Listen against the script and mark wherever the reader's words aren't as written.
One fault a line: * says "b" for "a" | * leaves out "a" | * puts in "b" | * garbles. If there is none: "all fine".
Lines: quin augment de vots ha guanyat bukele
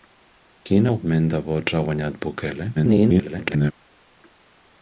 * garbles